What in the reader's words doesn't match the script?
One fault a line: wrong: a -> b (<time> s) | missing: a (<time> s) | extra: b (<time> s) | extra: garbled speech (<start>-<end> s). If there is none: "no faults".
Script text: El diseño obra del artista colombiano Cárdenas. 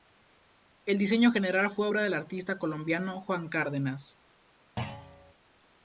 extra: general fue (1.3 s)
extra: Juan (3.2 s)